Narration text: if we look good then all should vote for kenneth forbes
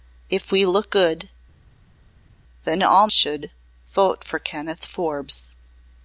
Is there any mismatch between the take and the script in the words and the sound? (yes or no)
no